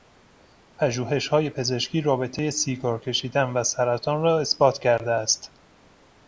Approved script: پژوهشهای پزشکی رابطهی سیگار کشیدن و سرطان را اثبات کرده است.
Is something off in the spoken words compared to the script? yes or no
no